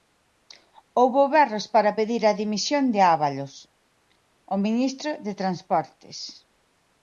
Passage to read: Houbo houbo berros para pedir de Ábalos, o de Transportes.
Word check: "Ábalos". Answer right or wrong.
right